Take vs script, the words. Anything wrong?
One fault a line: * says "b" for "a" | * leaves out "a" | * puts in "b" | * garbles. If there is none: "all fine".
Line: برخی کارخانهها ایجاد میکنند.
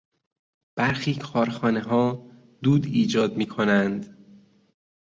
* puts in "دود"